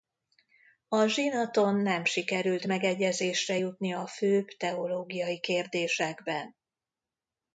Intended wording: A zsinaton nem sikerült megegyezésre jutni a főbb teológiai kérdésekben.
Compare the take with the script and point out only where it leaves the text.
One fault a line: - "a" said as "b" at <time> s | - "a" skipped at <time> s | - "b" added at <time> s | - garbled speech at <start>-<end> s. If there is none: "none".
none